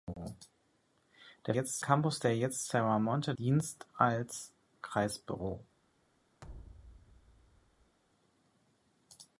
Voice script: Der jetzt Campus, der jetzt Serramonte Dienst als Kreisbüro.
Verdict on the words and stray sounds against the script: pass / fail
fail